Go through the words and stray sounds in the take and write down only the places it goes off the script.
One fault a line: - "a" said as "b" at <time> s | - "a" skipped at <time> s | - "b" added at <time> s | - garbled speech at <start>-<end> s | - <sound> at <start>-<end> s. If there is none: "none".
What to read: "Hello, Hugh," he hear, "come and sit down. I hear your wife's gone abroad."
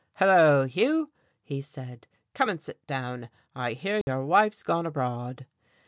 - "hear" said as "said" at 1.6 s
- dropout at 4.0-4.1 s